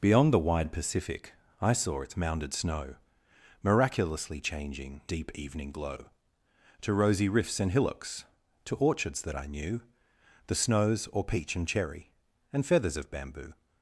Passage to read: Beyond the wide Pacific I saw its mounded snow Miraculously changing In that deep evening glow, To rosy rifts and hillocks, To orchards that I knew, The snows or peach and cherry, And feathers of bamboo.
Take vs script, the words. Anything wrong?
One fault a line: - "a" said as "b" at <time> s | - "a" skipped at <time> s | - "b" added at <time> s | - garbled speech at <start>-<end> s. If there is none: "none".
- "In that" skipped at 5.0 s